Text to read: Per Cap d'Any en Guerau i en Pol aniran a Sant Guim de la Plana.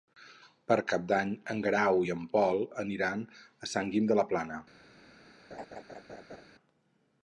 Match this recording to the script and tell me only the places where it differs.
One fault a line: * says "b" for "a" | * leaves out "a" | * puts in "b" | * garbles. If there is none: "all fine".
all fine